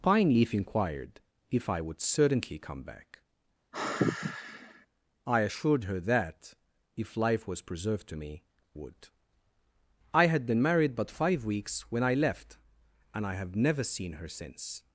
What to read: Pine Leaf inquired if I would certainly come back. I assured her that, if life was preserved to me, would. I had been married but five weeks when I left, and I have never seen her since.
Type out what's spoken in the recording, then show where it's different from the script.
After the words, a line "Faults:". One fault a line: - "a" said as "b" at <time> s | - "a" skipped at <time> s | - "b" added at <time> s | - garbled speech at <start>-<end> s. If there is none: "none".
Pine Leaf inquired if I would certainly come back. I assured her that, if life was preserved to me, would. I had been married but five weeks when I left, and I have never seen her since.
Faults:
none